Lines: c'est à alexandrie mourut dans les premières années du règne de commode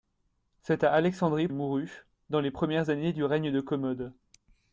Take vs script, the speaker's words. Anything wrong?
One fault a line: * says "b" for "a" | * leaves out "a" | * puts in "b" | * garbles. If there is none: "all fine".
all fine